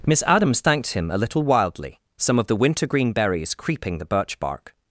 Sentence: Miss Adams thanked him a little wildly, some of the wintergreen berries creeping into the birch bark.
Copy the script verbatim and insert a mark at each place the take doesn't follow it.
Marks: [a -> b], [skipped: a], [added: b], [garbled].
Miss Adams thanked him a little wildly, some of the wintergreen berries creeping [skipped: into] the birch bark.